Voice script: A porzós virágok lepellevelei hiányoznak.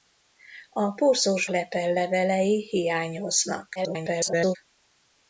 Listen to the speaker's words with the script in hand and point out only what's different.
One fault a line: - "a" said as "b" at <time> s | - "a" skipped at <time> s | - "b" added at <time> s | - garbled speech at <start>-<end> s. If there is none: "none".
- "virágok" skipped at 1.5 s
- garbled speech at 3.8-4.6 s